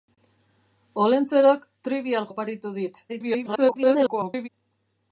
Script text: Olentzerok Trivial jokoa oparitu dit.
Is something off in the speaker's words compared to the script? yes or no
yes